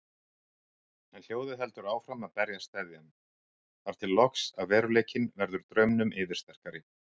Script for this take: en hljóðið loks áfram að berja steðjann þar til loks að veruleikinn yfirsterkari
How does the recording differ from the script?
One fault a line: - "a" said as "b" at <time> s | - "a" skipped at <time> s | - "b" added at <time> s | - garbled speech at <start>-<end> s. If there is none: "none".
- "loks" said as "heldur" at 1.6 s
- "verður draumnum" added at 5.4 s